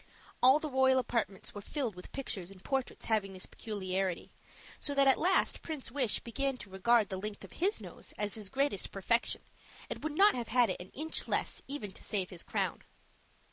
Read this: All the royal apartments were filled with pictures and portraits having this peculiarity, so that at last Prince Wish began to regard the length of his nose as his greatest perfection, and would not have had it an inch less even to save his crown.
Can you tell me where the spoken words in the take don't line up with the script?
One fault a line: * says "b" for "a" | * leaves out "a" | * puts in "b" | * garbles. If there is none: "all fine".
all fine